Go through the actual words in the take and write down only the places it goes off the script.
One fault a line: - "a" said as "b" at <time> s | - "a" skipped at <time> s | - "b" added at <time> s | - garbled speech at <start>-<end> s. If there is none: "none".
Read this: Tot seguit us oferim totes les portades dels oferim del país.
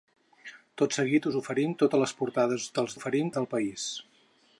none